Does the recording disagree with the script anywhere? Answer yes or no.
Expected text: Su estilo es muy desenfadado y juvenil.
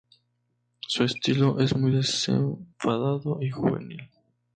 no